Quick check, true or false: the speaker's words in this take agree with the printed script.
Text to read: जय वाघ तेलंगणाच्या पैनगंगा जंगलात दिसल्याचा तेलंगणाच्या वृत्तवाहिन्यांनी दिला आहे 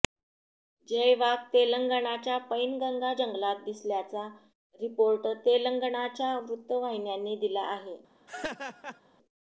false